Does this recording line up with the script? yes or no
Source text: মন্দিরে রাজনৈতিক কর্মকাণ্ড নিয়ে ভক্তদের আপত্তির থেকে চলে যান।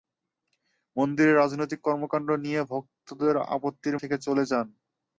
yes